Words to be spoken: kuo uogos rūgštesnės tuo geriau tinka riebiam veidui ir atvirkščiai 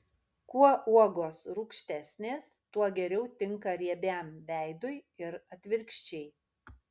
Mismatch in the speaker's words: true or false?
false